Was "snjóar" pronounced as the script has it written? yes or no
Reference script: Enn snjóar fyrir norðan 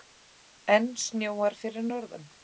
yes